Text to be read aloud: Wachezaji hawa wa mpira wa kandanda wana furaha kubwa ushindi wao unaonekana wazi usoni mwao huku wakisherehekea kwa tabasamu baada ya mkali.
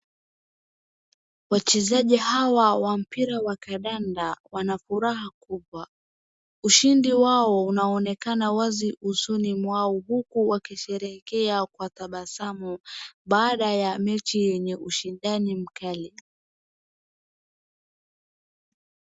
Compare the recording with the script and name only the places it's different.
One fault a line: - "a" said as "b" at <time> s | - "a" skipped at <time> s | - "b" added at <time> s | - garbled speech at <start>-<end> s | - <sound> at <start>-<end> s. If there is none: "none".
- "mechi yenye ushindani" added at 14.0 s